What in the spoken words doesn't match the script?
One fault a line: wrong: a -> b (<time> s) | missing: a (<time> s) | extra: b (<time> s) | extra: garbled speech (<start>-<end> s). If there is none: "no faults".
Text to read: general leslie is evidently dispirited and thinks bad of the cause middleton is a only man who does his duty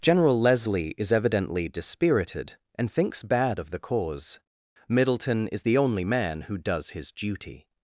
wrong: a -> the (5.6 s)